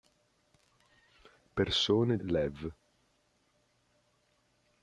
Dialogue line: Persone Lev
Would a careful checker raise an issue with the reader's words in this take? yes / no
no